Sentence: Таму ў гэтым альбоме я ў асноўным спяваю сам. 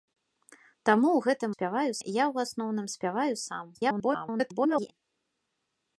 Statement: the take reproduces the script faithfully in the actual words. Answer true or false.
false